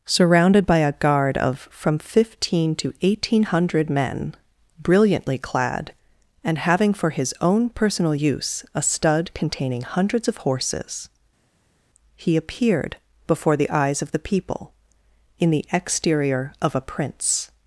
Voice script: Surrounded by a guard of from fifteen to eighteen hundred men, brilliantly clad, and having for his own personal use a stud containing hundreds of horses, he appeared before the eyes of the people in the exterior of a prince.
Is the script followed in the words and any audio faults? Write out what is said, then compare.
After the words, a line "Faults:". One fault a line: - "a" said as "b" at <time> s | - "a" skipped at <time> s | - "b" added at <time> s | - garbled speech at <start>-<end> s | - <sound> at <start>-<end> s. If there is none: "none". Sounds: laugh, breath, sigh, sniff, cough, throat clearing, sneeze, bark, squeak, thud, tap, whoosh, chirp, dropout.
Surrounded by a guard of from fifteen to eighteen hundred men, brilliantly clad, and having for his own personal use a stud containing hundreds of horses, he appeared before the eyes of the people in the exterior of a prince.
Faults:
none